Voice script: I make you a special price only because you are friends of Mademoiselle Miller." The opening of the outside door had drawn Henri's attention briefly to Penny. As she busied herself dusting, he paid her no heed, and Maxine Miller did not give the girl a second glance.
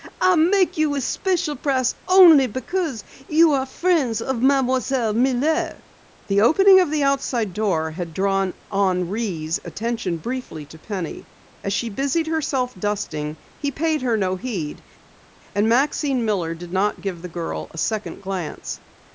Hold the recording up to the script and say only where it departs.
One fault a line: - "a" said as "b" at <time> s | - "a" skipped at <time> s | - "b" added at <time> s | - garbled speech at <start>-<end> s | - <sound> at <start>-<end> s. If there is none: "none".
none